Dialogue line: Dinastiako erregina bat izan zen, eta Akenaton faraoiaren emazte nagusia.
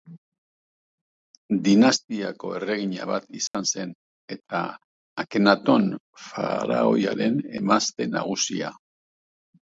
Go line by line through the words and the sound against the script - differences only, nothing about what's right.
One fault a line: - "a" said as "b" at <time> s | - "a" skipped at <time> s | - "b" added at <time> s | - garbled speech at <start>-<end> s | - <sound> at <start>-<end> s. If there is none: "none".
- dropout at 3.5-3.5 s